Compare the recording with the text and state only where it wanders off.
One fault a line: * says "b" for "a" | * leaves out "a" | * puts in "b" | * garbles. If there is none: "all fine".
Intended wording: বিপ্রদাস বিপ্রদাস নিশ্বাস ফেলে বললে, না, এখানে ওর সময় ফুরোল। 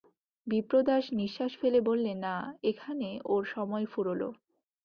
* leaves out "বিপ্রদাস"